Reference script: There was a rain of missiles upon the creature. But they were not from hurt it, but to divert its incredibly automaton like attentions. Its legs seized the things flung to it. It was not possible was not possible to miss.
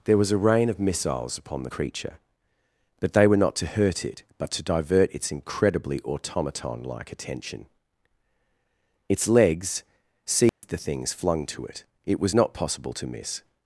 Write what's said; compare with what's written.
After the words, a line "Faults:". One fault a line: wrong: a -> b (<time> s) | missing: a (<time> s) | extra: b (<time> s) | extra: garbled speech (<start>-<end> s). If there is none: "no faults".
There was a rain of missiles upon the creature. But they were not to hurt it, but to divert its incredibly automaton like attention. Its legs seized the things flung to it. It was not possible to miss.
Faults:
wrong: from -> to (3.6 s)
wrong: attentions -> attention (7.1 s)
missing: was not possible (12.9 s)